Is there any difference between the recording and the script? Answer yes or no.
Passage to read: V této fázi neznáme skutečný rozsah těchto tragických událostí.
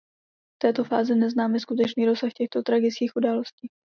no